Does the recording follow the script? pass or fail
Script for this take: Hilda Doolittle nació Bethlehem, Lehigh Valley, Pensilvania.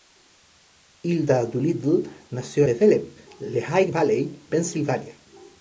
pass